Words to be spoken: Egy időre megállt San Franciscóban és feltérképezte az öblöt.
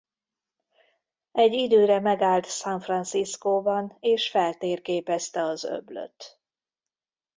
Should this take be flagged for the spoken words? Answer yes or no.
no